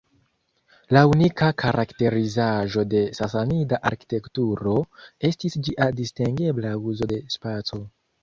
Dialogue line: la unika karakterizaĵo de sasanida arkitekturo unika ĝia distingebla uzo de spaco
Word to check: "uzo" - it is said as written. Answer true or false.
true